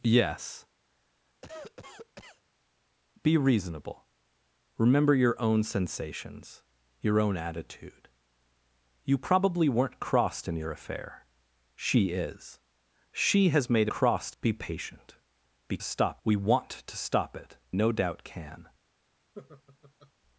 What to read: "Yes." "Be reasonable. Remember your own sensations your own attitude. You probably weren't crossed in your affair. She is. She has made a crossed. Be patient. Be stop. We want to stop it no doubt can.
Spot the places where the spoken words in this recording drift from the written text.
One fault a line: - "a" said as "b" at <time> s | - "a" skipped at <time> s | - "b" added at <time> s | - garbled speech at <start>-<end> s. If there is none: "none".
none